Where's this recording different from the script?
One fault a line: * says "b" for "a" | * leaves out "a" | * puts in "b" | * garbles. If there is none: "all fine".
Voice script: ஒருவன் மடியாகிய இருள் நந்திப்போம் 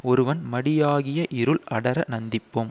* puts in "அடர"